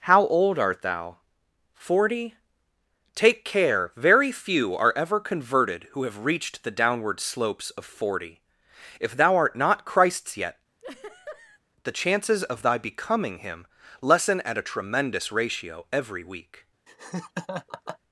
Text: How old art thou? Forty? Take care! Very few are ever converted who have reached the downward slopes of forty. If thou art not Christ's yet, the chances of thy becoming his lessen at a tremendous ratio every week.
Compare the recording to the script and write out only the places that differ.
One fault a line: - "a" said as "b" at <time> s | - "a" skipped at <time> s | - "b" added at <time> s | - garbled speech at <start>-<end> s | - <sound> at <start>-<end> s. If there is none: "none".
- laugh at 10.8-11.6 s
- "his" said as "him" at 13.4 s
- laugh at 16.9-18.0 s